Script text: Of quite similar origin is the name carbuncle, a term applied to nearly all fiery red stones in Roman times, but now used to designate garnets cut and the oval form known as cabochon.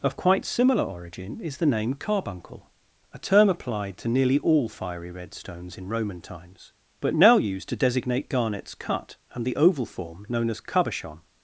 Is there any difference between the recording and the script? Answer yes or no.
no